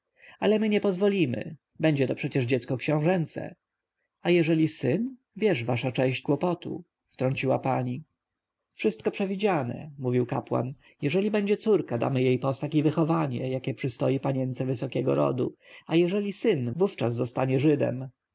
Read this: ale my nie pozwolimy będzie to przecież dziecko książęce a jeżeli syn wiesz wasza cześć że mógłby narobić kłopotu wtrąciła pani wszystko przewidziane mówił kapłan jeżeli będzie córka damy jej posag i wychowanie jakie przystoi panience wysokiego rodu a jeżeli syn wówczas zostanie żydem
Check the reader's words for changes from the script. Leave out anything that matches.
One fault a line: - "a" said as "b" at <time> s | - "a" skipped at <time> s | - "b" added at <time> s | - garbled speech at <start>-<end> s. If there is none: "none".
- "że mógłby narobić" skipped at 6.3 s